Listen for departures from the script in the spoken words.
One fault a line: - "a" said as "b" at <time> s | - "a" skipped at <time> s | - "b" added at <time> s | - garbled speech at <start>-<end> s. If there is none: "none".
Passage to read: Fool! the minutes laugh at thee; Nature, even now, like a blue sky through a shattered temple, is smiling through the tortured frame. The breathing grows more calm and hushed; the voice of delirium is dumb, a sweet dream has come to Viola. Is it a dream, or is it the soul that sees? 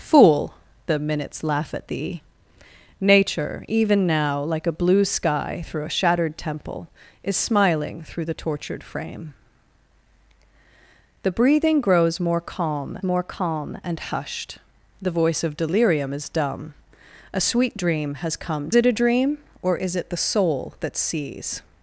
- "more calm" added at 13.0 s
- "to Viola Is" skipped at 18.7 s